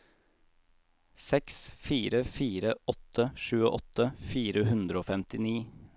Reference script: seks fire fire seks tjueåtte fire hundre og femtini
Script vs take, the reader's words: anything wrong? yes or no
yes